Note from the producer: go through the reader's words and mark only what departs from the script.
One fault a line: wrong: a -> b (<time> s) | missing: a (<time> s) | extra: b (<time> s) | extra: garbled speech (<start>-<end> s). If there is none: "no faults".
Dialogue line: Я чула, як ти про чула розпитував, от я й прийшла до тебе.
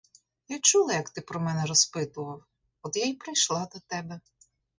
wrong: чула -> мене (1.4 s)